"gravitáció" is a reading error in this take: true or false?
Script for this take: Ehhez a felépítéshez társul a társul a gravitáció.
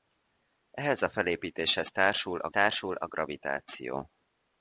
false